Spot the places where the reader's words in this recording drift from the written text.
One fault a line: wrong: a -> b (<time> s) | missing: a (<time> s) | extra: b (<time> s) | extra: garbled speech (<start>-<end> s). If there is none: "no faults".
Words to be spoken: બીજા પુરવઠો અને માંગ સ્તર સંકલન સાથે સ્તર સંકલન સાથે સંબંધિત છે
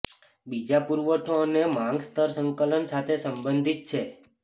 missing: સ્તર સંકલન સાથે (3.1 s)